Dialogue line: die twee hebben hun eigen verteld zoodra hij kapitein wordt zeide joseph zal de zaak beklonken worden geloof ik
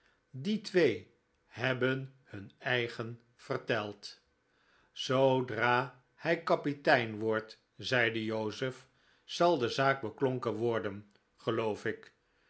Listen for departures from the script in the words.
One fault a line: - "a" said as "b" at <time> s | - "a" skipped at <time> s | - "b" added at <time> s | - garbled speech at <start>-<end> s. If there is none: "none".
none